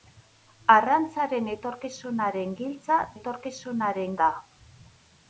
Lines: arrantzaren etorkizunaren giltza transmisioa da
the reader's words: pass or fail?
fail